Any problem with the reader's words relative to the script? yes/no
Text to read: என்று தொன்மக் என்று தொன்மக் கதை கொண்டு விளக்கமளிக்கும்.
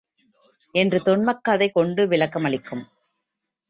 yes